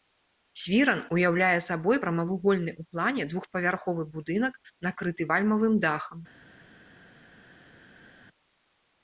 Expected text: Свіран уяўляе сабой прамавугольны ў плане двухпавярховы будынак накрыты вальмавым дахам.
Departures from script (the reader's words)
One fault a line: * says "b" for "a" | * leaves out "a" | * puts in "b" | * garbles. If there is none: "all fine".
all fine